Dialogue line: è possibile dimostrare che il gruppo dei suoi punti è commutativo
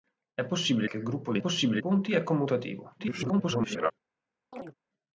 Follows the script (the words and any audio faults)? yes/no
no